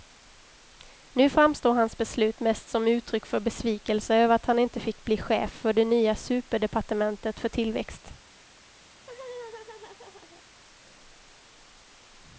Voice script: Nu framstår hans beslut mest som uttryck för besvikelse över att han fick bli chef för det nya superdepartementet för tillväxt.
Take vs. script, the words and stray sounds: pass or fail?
fail